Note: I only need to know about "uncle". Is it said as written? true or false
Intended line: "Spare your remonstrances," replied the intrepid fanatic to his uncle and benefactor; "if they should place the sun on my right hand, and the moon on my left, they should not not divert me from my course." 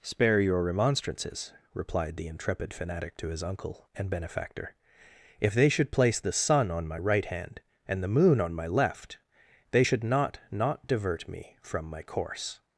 true